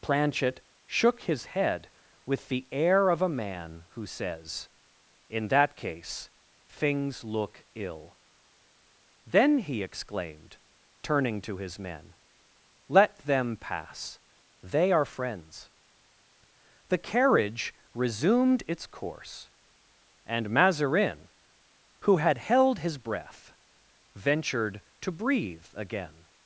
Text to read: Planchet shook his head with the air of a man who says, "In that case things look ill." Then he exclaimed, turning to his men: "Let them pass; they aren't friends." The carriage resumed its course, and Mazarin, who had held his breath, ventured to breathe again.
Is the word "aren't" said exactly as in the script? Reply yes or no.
no